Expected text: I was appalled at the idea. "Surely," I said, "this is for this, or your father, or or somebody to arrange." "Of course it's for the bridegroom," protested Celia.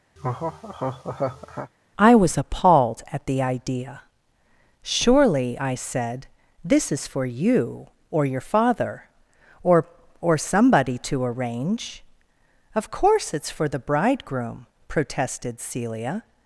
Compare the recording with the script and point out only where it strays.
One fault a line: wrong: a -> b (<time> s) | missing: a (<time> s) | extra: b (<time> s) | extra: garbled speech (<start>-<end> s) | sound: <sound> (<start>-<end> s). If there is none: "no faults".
sound: laugh (0.2-1.7 s)
wrong: this -> you (7.3 s)